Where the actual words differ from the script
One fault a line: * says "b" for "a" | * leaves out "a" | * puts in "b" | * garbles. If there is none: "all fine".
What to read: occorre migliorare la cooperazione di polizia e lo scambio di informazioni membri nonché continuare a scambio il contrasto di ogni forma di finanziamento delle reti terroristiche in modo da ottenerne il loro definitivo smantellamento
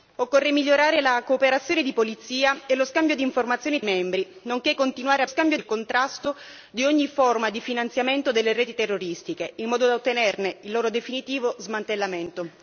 all fine